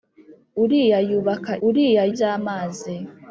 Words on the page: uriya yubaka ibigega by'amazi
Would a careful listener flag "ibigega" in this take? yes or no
yes